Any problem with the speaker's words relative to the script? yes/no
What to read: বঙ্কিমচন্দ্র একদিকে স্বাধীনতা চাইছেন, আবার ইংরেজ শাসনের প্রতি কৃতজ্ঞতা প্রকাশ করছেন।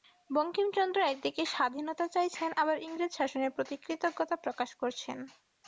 no